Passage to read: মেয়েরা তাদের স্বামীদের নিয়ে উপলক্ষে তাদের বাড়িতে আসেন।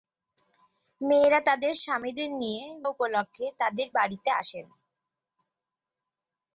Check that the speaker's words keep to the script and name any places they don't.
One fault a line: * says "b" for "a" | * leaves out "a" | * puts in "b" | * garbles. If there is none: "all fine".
all fine